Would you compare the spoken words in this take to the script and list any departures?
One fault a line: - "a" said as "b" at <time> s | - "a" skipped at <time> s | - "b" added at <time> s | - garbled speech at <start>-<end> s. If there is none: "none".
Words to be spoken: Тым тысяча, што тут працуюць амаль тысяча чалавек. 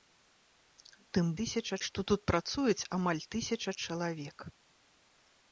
none